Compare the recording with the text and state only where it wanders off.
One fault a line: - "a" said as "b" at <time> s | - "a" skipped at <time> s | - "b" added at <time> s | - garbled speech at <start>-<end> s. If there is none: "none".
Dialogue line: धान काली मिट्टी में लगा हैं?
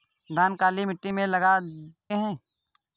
none